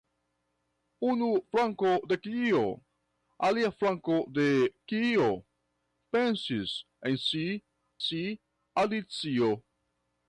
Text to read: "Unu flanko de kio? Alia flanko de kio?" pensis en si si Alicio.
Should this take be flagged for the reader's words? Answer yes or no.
no